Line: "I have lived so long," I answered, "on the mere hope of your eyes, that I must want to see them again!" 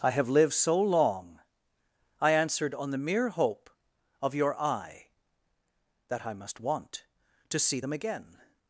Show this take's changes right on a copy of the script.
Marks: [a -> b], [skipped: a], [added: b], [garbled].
"I have lived so long," I answered, "on the mere hope of your [eyes, -> eye] that I must want to see them again!"